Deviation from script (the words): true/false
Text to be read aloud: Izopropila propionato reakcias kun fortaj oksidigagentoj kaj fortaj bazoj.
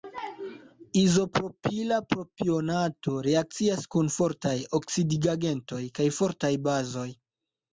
false